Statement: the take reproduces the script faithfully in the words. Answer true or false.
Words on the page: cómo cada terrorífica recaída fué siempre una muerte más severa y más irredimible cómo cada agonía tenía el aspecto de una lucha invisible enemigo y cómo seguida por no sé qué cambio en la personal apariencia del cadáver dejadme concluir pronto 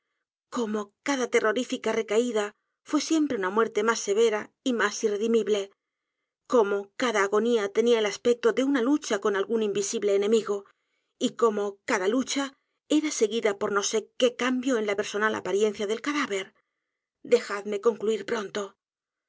false